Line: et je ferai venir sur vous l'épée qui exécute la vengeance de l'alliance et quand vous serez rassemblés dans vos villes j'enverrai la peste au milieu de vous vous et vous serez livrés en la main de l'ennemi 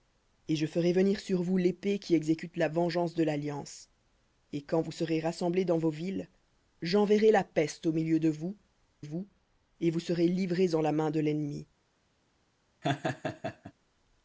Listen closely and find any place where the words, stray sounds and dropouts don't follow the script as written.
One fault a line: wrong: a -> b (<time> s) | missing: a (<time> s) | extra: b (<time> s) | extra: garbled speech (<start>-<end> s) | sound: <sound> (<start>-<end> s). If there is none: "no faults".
sound: laugh (12.8-13.7 s)